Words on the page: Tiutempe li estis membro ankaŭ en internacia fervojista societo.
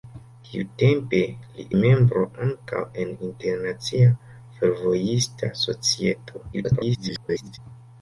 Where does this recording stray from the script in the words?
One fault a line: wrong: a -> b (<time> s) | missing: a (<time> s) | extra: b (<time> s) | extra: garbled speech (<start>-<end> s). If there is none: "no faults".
missing: estis (1.6 s)
extra: garbled speech (6.5-7.6 s)